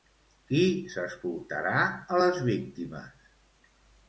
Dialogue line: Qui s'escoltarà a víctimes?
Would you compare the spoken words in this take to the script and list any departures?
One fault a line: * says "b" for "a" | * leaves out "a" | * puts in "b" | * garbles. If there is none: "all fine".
* puts in "les"